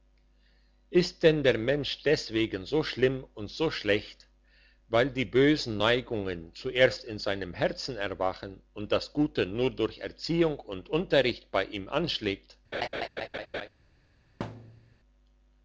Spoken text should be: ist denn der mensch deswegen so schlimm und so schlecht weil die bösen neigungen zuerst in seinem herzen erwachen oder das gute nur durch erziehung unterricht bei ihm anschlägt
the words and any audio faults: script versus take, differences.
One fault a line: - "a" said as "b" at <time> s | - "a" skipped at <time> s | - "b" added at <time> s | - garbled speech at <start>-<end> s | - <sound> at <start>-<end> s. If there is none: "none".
- "oder" said as "und" at 8.7 s
- "und" added at 10.6 s
- laugh at 12.7-13.7 s
- thud at 14.4-15.0 s